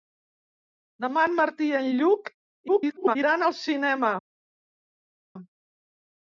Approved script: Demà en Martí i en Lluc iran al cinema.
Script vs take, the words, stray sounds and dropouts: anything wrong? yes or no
yes